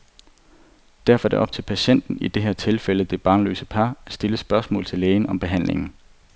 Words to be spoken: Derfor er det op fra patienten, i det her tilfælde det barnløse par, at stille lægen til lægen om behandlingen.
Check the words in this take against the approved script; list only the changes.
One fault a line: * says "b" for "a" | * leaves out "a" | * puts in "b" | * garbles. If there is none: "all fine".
* says "til" for "fra"
* says "spørgsmål" for "lægen"